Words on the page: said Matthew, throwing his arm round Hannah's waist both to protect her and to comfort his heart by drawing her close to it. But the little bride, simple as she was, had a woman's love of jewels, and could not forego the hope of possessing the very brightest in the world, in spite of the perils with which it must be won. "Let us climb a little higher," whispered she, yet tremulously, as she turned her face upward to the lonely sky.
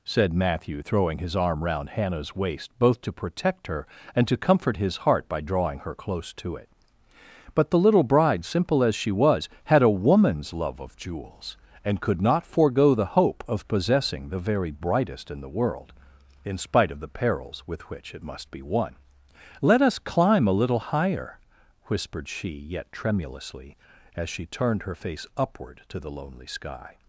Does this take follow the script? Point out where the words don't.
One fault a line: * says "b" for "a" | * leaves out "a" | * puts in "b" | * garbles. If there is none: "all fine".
all fine